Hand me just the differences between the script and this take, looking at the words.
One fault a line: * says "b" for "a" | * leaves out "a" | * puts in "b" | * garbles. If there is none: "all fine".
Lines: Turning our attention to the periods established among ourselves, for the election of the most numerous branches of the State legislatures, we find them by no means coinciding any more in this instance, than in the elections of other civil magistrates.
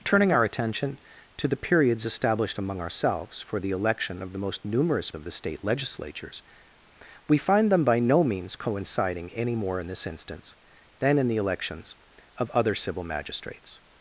* leaves out "branches"